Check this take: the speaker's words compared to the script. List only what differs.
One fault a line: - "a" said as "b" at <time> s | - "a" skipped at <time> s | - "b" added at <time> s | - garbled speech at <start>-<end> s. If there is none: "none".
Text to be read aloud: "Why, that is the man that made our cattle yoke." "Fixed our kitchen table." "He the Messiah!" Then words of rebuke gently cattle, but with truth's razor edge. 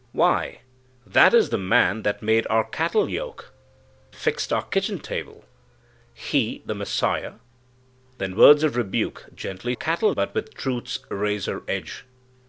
none